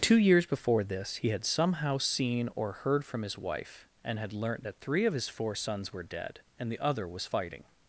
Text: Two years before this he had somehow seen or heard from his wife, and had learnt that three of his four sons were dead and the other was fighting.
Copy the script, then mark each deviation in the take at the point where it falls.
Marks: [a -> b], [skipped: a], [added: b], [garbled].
Two years before this he had somehow seen or heard from his wife, and had learnt that three of his four sons were dead and the other was fighting.